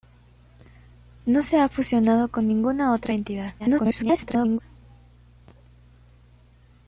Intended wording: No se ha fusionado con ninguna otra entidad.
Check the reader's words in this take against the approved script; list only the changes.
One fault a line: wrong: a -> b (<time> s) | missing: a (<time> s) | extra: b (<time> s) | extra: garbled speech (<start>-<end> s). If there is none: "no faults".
extra: garbled speech (3.6-4.6 s)